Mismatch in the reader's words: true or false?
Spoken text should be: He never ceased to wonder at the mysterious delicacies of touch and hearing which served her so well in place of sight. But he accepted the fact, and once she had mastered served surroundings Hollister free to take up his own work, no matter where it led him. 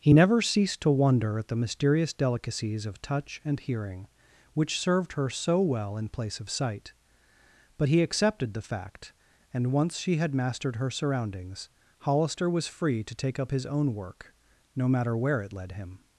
true